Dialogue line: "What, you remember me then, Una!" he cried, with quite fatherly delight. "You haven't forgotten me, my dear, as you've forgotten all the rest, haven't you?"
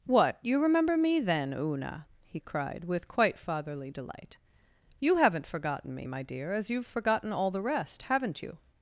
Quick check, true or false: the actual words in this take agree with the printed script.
true